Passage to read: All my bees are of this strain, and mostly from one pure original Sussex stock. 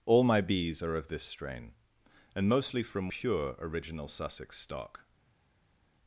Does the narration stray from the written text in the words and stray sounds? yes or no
yes